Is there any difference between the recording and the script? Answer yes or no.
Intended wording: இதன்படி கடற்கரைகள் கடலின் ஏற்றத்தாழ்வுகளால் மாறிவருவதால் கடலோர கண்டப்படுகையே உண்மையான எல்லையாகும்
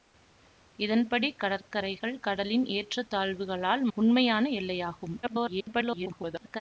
yes